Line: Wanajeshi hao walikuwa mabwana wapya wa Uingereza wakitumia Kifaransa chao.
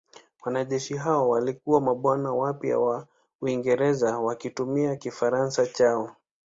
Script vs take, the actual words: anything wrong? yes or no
no